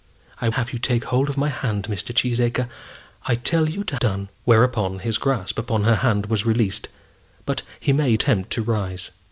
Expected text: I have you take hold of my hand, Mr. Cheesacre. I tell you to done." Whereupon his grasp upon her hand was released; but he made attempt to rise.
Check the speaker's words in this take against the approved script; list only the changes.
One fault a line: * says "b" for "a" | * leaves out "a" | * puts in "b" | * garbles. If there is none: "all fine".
all fine